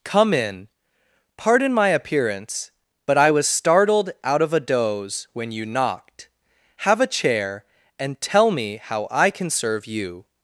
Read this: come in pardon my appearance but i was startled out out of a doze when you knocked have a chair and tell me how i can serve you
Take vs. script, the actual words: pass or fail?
fail